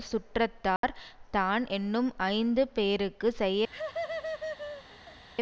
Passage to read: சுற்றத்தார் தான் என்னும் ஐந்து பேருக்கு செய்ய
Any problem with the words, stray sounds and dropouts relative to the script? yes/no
yes